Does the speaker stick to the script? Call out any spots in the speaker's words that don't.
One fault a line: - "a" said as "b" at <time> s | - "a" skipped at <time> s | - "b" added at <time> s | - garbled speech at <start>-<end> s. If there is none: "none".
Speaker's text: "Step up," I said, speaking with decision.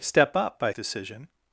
- "said speaking with" skipped at 0.7 s